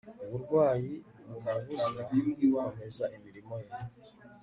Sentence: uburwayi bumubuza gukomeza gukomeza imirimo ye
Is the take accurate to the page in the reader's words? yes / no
no